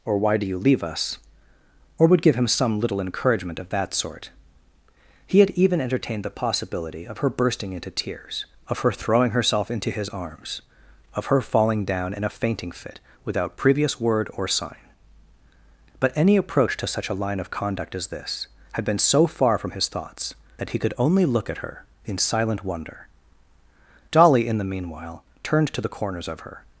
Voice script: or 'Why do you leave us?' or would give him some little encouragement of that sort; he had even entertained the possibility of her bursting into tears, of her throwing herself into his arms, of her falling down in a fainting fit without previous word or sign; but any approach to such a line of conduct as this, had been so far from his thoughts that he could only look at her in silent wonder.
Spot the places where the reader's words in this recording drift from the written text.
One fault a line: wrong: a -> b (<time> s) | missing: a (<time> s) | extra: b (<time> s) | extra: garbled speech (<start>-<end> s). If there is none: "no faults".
extra: Dolly in the meanwhile turned to the corners of her (24.1 s)